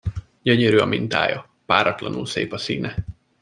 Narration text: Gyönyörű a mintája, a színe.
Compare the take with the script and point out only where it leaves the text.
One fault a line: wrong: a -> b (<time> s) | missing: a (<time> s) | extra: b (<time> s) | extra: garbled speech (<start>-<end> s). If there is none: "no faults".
extra: páratlanul szép (1.6 s)